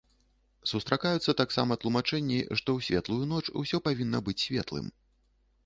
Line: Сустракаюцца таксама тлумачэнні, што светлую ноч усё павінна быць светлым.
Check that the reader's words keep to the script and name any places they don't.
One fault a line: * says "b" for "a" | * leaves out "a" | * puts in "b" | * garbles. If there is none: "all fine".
* puts in "ў"